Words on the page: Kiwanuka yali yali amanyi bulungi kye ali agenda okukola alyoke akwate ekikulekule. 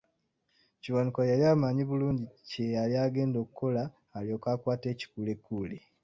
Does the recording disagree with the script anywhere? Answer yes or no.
yes